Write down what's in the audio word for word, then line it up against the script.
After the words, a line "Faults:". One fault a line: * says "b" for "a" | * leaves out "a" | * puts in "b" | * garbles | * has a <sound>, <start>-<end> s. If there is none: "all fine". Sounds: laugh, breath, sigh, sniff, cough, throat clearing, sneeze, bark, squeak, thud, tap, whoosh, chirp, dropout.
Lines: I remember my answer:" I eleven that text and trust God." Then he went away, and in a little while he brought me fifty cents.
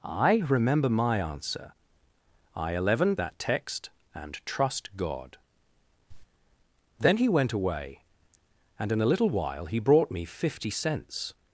I remember my answer:" I eleven that text and trust God." Then he went away, and in a little while he brought me fifty cents.
Faults:
* has a cough, 6.1-6.3 s